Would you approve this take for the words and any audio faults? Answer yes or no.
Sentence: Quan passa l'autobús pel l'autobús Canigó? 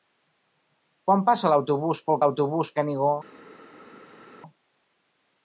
yes